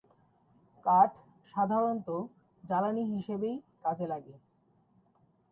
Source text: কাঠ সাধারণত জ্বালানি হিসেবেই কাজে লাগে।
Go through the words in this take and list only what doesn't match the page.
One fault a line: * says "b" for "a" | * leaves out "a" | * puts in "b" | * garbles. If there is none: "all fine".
all fine